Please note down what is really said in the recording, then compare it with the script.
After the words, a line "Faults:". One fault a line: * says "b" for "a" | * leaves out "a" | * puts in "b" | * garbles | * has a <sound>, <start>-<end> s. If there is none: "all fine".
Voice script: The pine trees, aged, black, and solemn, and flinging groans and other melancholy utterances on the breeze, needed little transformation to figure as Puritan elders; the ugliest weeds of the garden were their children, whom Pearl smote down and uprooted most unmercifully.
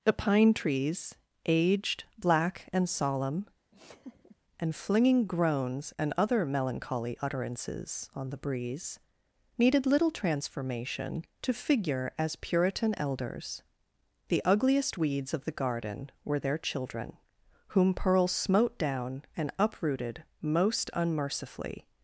The pine trees, aged, black, and solemn, and flinging groans and other melancholy utterances on the breeze, needed little transformation to figure as Puritan elders; the ugliest weeds of the garden were their children, whom Pearl smote down and uprooted most unmercifully.
Faults:
* has a laugh, 3.7-4.4 s